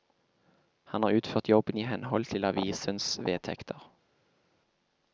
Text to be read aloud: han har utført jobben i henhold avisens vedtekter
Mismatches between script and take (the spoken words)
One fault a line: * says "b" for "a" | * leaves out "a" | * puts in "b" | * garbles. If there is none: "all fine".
* puts in "til"